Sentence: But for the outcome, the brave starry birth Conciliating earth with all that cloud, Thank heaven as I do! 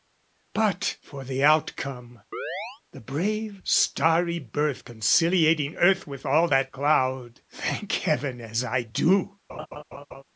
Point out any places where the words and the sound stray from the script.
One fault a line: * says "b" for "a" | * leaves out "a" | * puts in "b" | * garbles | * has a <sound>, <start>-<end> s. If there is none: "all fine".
* has a chirp, 2.3-2.8 s
* has a laugh, 9.5-10.2 s